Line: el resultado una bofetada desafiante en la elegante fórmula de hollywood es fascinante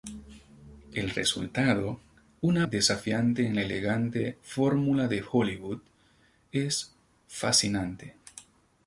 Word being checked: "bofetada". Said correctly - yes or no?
no